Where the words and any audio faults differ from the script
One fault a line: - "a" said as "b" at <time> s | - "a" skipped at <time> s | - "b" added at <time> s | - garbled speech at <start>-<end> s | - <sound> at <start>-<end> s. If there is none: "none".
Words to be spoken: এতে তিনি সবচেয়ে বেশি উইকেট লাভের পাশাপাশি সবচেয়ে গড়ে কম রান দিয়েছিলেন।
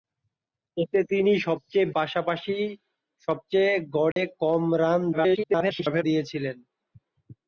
- "বেশি উইকেট লাভের" skipped at 1.9 s
- dropout at 4.1-4.2 s
- garbled speech at 5.1-6.0 s